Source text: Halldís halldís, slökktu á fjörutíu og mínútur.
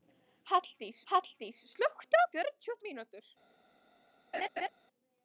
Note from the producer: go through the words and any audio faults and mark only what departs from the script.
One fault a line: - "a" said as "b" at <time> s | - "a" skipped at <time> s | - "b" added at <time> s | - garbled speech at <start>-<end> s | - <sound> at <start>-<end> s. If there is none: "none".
- laugh at 4.3-4.7 s